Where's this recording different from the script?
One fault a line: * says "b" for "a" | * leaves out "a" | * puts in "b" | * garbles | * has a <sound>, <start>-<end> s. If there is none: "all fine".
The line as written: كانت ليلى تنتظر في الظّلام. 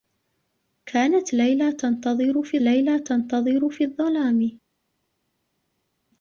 * puts in "ليلى تنتظر في"